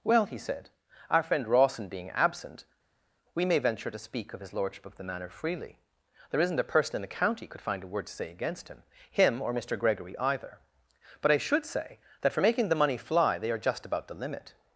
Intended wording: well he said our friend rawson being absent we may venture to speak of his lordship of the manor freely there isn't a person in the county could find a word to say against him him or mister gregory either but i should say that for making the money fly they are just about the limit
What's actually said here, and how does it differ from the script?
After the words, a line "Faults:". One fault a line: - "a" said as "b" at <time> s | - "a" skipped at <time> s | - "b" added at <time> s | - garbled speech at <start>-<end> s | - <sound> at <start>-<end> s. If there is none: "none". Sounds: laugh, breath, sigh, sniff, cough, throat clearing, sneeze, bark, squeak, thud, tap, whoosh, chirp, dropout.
well he said our friend rawson being absent we may venture to speak of his lordship of the manor freely there isn't a person in the county could find a word to say against him him or mister gregory either but i should say that for making the money fly they are just about the limit
Faults:
none